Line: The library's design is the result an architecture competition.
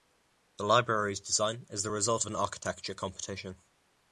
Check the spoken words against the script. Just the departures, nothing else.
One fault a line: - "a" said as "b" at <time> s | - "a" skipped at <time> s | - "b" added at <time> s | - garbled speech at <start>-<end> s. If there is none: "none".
none